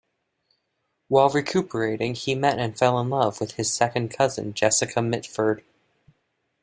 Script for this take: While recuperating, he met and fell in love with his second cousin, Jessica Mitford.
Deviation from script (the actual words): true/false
false